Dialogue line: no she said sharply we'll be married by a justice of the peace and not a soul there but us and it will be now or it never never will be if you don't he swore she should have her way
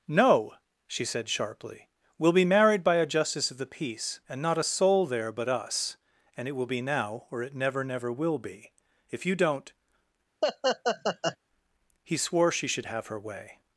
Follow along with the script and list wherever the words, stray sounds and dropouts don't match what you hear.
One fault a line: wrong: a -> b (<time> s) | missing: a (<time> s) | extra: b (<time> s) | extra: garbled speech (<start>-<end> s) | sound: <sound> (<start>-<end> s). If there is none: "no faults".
sound: laugh (10.4-11.4 s)